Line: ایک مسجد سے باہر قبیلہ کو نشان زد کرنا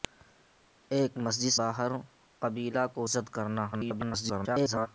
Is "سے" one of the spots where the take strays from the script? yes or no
yes